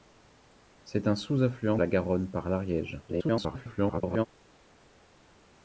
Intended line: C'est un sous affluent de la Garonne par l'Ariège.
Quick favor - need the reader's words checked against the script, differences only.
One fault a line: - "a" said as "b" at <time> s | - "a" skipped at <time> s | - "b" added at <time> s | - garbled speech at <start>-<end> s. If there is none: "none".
- "de" skipped at 1.8 s
- garbled speech at 3.1-4.3 s